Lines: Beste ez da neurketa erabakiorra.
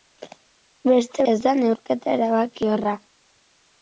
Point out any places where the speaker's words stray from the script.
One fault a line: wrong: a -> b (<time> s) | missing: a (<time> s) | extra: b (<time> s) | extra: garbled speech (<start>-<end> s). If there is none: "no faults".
no faults